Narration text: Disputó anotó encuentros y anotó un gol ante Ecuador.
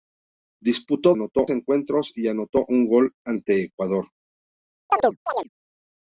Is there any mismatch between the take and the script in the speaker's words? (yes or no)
no